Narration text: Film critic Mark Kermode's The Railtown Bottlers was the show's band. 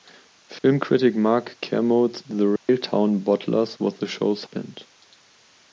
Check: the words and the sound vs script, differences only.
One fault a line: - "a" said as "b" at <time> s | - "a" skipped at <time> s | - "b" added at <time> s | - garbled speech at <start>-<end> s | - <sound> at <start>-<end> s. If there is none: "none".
- dropout at 0.6-0.6 s
- dropout at 2.6-2.7 s